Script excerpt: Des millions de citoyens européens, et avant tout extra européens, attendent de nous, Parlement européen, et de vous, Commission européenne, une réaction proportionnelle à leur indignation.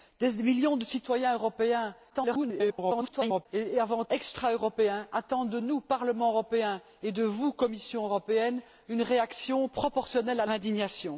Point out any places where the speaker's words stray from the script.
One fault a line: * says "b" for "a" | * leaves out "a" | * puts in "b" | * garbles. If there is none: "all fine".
* garbles
* leaves out "tout"
* leaves out "leur"